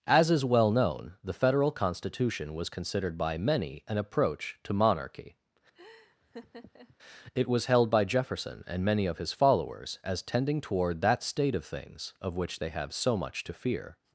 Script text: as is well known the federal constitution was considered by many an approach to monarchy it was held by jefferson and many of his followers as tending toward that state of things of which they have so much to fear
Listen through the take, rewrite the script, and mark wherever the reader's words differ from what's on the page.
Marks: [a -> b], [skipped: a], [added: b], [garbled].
as is well known the federal constitution was considered by many an approach to monarchy it was held by jefferson and many of his followers as tending toward that state of things of which they have so much to fear